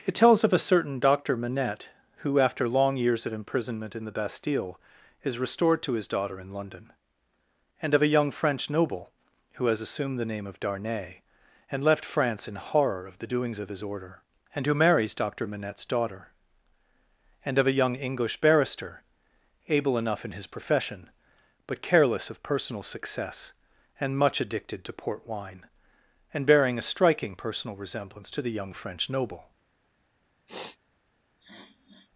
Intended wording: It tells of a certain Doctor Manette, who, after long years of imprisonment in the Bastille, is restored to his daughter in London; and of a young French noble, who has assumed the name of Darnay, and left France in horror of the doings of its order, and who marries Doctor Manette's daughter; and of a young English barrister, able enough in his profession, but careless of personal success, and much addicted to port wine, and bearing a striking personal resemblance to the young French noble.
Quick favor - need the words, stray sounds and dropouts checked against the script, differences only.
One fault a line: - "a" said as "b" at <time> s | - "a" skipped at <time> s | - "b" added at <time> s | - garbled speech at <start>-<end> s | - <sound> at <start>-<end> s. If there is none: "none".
- "its" said as "his" at 13.7 s
- sniff at 30.5-30.8 s
- sniff at 31.4-32.1 s